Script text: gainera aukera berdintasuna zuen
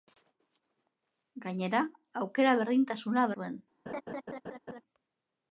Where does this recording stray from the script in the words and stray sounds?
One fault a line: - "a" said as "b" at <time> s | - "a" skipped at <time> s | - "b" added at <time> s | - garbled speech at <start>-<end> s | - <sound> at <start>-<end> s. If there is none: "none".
- laugh at 3.9-4.8 s